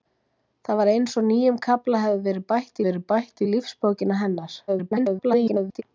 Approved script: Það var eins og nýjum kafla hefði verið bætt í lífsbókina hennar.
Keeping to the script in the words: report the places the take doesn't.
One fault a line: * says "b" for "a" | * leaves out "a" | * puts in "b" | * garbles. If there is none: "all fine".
* puts in "verið bætt"
* garbles